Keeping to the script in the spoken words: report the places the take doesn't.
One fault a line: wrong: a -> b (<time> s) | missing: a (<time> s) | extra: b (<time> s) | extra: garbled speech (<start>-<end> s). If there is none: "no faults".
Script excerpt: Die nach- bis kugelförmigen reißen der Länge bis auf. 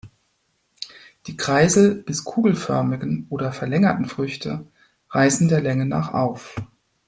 wrong: nach -> kreisel (1.4 s)
extra: oder verlängerten Früchte (3.3 s)
wrong: bis -> nach (5.8 s)